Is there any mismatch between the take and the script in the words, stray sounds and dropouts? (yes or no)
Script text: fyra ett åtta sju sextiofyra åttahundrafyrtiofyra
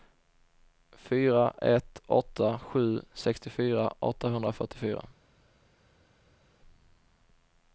no